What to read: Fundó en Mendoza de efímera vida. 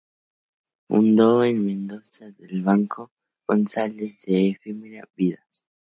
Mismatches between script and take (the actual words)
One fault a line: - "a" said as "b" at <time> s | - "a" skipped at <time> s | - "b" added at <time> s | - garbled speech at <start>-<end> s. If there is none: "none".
- "el Banco González" added at 2.4 s